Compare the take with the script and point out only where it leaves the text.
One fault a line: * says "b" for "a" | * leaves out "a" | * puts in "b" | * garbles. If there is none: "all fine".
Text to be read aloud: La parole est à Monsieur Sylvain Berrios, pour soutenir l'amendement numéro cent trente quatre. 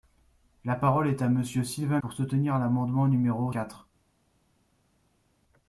* leaves out "Berrios"
* leaves out "cent trente"